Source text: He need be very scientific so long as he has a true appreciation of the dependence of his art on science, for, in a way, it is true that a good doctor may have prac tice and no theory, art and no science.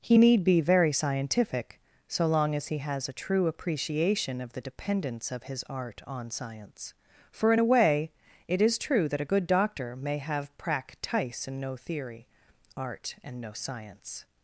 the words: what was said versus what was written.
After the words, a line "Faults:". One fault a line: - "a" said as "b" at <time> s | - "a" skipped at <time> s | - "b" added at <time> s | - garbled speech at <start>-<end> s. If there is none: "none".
He need be very scientific so long as he has a true appreciation of the dependence of his art on science, for, in a way, it is true that a good doctor may have prac tice and no theory, art and no science.
Faults:
none